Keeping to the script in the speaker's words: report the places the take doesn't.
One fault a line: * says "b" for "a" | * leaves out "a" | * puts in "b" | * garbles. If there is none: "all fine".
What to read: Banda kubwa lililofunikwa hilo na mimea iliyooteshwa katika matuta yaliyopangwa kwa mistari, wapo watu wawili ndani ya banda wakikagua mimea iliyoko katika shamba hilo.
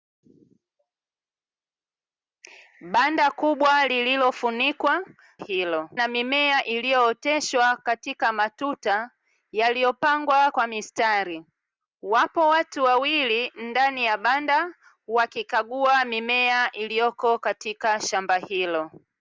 all fine